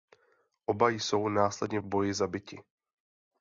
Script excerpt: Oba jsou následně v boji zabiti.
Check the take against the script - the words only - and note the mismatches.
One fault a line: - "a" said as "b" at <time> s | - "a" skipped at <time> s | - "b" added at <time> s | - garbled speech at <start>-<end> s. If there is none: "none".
none